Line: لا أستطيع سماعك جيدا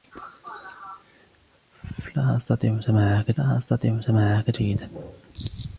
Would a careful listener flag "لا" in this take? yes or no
no